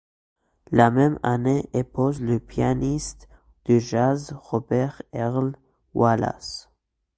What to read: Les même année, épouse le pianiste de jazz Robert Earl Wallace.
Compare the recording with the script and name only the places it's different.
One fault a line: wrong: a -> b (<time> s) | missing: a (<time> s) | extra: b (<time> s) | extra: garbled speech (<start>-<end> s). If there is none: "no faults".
wrong: Les -> La (0.7 s)